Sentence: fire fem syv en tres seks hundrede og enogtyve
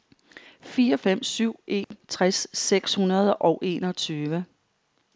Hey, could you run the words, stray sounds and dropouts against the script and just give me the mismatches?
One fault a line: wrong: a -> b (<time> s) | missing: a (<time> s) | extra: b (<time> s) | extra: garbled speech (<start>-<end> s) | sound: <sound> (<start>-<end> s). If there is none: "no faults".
sound: dropout (1.8-1.9 s)